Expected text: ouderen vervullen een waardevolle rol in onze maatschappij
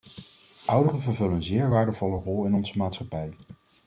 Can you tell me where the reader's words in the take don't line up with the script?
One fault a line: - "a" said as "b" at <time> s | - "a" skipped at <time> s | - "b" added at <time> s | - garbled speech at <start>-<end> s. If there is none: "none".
- "zeer" added at 1.4 s